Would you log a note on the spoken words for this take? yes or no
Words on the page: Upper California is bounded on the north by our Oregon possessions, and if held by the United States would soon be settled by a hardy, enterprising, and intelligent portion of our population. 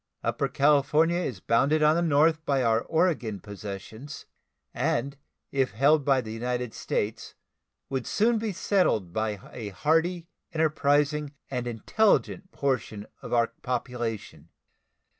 no